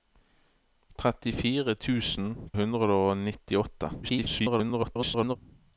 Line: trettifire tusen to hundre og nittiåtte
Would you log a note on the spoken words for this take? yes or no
yes